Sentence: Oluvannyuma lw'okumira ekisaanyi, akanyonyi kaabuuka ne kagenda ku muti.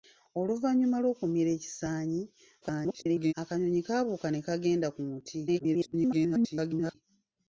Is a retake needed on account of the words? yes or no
yes